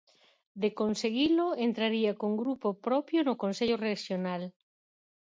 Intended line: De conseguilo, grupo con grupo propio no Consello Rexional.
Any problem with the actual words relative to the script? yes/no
yes